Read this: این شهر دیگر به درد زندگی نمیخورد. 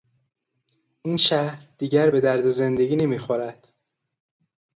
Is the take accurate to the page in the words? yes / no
yes